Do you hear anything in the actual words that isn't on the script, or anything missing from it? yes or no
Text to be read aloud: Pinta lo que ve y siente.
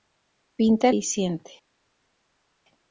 yes